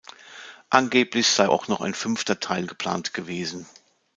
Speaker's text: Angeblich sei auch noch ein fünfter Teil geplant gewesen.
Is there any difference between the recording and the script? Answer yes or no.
no